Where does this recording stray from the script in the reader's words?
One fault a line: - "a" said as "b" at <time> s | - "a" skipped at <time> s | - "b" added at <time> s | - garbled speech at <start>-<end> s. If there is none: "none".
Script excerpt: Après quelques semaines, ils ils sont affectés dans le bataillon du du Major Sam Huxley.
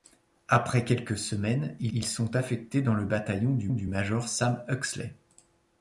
none